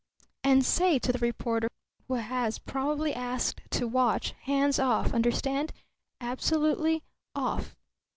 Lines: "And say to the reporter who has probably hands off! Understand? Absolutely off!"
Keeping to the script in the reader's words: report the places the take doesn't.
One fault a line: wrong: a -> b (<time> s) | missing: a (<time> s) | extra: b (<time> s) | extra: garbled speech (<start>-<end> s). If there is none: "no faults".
extra: asked to watch (3.1 s)